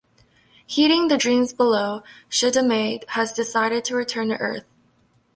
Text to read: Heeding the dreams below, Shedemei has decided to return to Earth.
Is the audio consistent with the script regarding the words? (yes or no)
yes